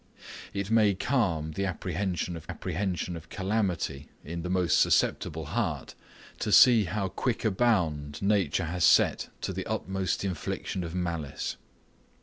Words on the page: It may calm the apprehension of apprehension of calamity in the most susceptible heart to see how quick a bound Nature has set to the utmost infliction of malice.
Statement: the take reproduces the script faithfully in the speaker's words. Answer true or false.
true